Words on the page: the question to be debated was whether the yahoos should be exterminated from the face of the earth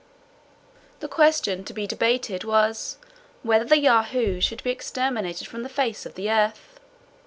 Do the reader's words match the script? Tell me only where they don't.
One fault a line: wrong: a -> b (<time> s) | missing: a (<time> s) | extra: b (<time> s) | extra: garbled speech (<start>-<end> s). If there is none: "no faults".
no faults